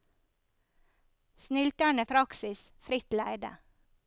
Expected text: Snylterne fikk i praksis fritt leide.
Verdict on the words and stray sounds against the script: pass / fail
fail